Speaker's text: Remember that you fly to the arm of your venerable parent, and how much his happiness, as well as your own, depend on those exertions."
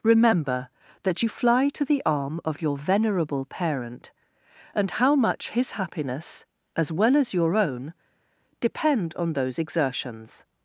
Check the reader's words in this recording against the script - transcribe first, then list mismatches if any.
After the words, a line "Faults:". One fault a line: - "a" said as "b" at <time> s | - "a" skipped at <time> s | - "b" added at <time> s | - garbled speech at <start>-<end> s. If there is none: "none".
Remember that you fly to the arm of your venerable parent, and how much his happiness, as well as your own, depend on those exertions."
Faults:
none